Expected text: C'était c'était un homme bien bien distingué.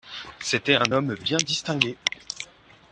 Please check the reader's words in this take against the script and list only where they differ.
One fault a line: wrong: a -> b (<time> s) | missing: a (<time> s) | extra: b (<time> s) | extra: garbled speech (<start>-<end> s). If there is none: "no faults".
missing: c'était (0.7 s)
missing: bien (1.4 s)